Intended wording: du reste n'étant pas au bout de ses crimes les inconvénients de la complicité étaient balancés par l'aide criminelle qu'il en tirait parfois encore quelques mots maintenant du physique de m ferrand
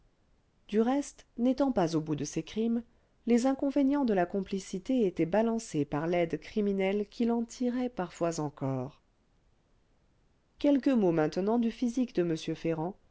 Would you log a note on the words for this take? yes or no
no